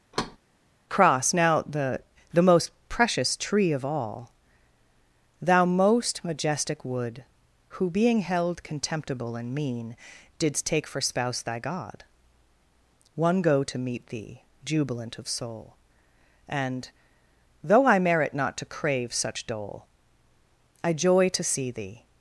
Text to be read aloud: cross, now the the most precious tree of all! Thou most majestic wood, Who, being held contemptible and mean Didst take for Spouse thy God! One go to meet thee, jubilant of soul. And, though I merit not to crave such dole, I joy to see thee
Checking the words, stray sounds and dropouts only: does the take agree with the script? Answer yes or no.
no